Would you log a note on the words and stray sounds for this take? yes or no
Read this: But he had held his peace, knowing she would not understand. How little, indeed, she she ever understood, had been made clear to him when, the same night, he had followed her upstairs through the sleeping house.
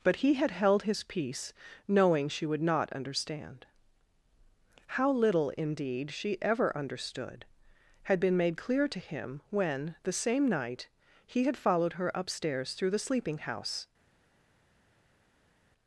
yes